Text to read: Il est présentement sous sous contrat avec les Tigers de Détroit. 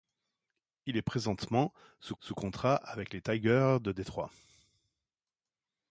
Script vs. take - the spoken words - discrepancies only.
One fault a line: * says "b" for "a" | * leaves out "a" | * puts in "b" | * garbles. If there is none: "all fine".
all fine